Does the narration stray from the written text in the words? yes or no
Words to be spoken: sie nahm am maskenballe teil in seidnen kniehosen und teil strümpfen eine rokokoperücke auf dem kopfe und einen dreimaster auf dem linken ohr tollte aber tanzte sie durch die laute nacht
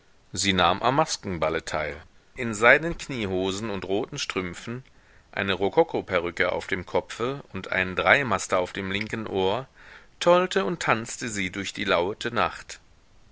yes